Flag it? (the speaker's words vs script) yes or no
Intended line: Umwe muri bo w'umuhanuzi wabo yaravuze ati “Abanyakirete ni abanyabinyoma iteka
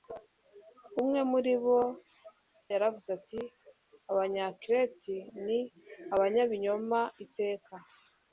yes